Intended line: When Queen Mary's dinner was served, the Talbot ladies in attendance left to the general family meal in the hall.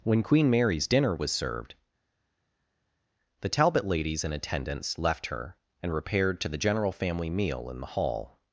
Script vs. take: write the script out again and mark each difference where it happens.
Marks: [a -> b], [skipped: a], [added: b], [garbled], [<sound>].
When Queen Mary's dinner was served, the Talbot ladies in attendance left [added: her and repaired] to the general family meal in the hall.